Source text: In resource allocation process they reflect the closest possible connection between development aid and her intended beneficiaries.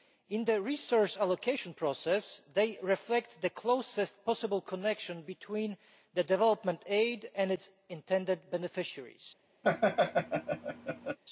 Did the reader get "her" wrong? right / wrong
wrong